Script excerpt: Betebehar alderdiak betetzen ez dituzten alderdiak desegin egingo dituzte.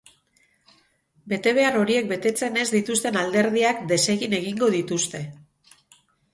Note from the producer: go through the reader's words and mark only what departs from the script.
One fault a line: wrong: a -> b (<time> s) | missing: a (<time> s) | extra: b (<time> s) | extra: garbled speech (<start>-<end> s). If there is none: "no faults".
wrong: alderdiak -> horiek (1.8 s)